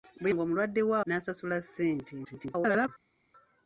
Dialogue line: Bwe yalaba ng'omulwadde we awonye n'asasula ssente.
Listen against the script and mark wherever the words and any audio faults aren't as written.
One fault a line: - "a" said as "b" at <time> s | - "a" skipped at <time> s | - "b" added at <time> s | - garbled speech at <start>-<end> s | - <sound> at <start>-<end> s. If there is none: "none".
- "yalaba" skipped at 0.3 s
- "awonye" skipped at 1.0 s
- garbled speech at 2.2-2.9 s